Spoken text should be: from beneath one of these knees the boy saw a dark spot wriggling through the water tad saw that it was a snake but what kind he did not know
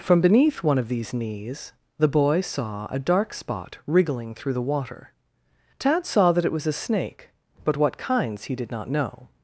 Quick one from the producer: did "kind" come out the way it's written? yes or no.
no